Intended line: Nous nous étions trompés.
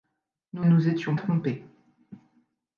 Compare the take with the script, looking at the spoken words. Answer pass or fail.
pass